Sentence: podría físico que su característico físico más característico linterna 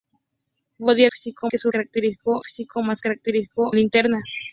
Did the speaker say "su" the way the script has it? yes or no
yes